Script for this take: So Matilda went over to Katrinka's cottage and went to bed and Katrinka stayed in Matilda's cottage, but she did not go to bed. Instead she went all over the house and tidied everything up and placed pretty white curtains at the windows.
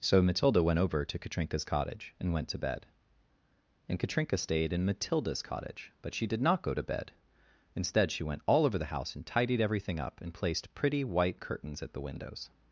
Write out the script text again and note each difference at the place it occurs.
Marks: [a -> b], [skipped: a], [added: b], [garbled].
So Matilda went over to Katrinka's cottage and went to bed and Katrinka stayed in Matilda's cottage, but she did not go to bed. Instead she went all over the house and tidied everything up and placed pretty white curtains at the windows.